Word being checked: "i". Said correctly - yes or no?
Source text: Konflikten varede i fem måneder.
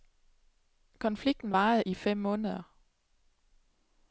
yes